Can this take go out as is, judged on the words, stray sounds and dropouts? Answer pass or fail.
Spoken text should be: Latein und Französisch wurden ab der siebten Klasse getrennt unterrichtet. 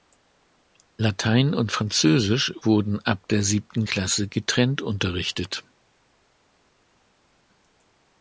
pass